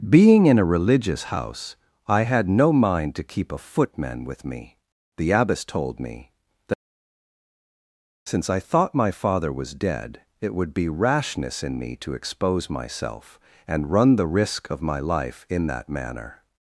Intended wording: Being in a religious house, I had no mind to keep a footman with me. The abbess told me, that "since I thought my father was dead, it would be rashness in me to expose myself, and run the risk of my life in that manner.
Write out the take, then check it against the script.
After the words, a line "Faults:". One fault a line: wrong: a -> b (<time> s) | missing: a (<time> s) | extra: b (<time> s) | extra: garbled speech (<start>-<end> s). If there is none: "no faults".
Being in a religious house, I had no mind to keep a footman with me. The abbess told me, that "since I thought my father was dead, it would be rashness in me to expose myself, and run the risk of my life in that manner.
Faults:
no faults